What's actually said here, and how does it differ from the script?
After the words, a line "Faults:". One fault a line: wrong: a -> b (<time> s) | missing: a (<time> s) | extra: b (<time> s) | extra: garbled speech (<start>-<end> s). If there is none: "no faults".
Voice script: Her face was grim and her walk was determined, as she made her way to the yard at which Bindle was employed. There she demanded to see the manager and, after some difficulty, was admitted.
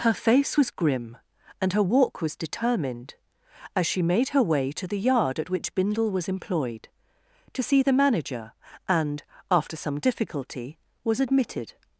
Her face was grim and her walk was determined, as she made her way to the yard at which Bindle was employed. to see the manager and, after some difficulty, was admitted.
Faults:
missing: There she demanded (6.9 s)